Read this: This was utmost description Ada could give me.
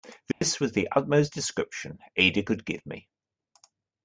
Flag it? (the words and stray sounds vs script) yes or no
yes